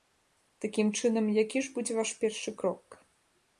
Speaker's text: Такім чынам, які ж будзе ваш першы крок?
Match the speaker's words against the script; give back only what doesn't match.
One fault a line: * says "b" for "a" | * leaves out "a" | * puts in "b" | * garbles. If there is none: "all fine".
all fine